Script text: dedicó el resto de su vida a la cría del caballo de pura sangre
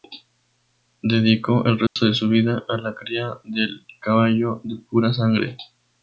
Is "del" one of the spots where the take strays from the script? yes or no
no